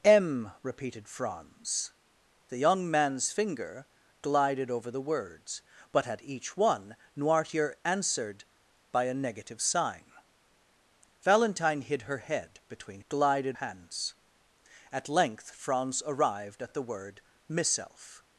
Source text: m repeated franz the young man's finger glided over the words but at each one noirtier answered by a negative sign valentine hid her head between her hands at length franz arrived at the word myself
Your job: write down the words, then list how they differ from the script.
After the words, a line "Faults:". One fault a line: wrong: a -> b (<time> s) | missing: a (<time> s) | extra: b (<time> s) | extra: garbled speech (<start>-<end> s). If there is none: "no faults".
m repeated franz the young man's finger glided over the words but at each one noirtier answered by a negative sign valentine hid her head between glided hands at length franz arrived at the word myself
Faults:
wrong: her -> glided (13.1 s)